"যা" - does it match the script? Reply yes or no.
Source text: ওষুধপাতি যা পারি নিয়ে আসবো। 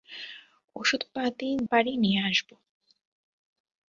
no